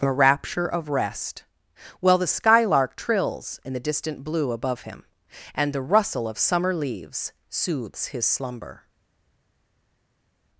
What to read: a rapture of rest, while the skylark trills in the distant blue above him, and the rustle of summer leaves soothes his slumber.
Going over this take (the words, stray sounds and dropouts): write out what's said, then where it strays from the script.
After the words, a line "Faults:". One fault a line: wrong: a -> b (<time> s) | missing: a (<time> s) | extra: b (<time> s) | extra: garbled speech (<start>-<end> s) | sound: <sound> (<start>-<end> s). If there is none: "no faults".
a rapture of rest, while the skylark trills in the distant blue above him, and the rustle of summer leaves soothes his slumber.
Faults:
no faults